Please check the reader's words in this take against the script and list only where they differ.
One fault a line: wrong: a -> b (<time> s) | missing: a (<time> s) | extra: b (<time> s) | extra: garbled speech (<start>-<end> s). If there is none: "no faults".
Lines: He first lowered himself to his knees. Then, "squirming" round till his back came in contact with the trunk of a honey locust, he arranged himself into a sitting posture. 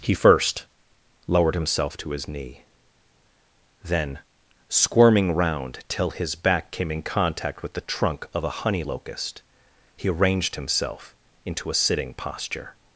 wrong: knees -> knee (2.3 s)